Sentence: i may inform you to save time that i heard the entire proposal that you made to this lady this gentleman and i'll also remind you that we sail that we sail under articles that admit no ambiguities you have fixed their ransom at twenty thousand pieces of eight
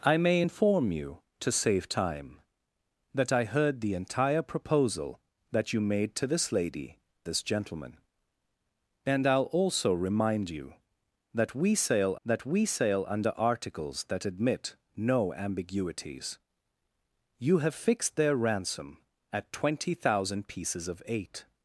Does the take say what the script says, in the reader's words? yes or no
yes